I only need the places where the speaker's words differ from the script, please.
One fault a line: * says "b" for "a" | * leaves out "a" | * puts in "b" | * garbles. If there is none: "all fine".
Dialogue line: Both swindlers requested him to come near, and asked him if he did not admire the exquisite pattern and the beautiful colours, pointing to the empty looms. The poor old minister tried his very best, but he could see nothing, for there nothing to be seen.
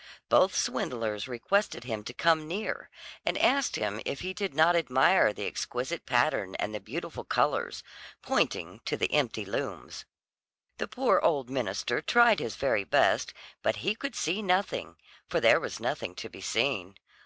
* puts in "was"